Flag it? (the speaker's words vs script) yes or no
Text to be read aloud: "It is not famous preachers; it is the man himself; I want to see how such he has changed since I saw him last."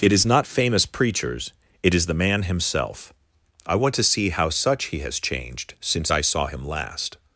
no